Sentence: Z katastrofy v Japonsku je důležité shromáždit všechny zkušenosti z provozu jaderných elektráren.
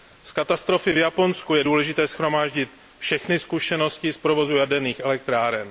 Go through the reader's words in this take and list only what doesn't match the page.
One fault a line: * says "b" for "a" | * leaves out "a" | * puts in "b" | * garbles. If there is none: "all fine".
all fine